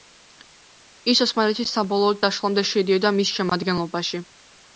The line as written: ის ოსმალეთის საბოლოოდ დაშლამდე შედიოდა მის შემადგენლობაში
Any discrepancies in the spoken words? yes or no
no